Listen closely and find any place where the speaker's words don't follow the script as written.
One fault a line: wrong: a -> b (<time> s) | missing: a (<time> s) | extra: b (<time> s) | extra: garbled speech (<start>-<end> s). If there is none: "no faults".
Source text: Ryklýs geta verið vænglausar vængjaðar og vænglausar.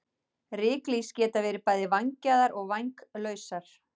wrong: vænglausar -> bæði (1.7 s)